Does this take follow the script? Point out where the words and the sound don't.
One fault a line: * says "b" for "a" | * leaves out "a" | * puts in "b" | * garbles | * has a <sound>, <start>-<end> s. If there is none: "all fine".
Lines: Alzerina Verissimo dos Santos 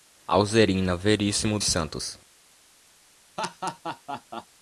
* leaves out "dos"
* has a laugh, 3.4-4.5 s